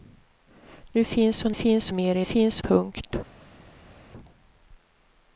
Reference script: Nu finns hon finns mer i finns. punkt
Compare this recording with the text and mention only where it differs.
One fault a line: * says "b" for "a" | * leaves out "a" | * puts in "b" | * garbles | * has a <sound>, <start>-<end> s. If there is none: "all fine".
all fine